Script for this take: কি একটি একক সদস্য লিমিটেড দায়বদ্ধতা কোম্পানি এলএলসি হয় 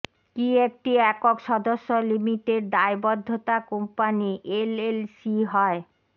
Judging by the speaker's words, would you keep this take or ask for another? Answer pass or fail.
pass